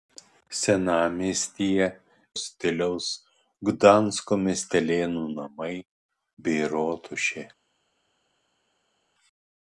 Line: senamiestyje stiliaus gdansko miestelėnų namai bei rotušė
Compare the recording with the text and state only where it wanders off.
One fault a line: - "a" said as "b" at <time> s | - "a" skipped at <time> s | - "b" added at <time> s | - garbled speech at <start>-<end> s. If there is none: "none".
none